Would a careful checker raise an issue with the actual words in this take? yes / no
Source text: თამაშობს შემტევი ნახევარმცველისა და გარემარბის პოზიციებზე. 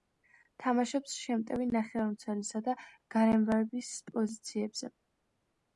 no